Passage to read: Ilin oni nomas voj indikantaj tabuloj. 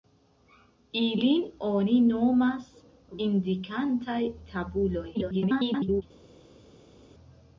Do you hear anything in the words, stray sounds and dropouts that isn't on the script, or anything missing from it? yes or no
yes